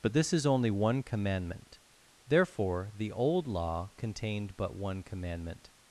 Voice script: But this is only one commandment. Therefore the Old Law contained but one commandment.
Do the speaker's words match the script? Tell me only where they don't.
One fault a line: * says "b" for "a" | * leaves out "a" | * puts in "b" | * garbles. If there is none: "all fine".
all fine